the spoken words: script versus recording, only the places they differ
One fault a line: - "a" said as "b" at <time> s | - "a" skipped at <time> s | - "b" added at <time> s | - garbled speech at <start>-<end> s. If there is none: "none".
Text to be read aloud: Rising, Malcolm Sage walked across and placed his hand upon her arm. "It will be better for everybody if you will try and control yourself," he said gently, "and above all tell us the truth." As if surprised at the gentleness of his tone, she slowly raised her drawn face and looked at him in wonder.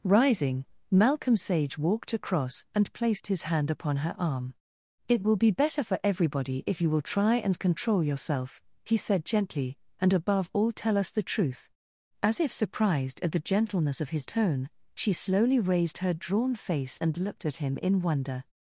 none